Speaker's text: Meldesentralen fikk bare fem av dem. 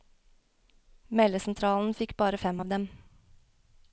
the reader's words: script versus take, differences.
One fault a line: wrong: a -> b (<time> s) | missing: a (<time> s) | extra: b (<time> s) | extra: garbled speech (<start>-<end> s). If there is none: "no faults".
no faults